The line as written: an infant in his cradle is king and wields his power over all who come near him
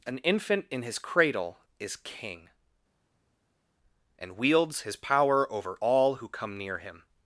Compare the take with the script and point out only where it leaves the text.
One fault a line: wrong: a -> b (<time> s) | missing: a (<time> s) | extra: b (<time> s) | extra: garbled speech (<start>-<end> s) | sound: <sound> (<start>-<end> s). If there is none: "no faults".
no faults